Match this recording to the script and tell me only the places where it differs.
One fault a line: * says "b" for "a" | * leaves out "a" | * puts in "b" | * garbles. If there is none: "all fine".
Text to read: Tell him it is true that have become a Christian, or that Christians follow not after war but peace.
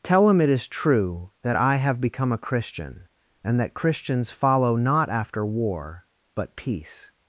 * puts in "I"
* says "and" for "or"